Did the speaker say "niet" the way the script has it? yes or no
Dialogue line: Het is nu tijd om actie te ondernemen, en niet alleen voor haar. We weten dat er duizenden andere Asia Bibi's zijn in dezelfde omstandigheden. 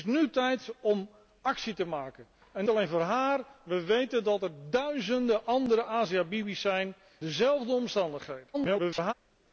no